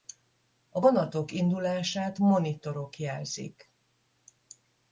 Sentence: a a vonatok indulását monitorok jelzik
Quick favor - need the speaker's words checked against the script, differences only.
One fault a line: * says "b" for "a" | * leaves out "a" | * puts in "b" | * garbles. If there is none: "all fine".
* leaves out "a"